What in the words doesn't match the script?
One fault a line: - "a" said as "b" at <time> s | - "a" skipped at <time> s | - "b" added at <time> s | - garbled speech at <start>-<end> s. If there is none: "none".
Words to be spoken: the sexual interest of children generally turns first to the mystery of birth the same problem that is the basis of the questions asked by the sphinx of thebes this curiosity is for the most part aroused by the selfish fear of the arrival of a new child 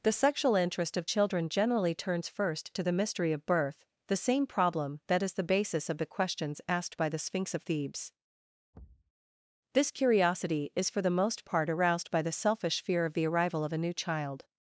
none